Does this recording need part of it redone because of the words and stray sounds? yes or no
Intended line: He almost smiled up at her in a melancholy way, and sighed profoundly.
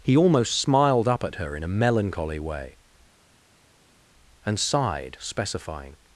yes